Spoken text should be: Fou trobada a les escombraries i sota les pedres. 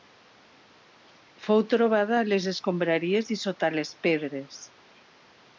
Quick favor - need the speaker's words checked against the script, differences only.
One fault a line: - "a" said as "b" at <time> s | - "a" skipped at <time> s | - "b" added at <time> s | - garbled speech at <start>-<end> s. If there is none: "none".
none